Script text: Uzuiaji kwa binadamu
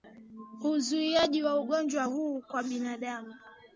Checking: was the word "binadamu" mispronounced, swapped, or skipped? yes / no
no